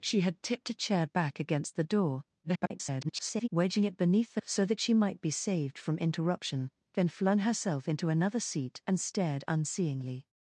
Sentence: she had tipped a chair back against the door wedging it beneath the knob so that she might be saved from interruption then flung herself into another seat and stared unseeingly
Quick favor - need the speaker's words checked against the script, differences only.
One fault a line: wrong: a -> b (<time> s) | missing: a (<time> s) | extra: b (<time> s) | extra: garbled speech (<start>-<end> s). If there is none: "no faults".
extra: garbled speech (2.4-3.5 s)
missing: knob (4.4 s)